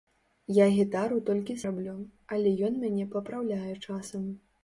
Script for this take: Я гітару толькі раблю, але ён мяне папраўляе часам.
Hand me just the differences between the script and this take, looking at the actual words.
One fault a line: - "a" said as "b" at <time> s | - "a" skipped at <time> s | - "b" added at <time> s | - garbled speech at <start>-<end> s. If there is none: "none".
none